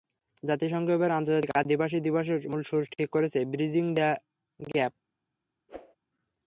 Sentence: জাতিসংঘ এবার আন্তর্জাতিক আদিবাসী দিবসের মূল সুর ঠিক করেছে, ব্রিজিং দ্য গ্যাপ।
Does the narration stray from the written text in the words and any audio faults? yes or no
yes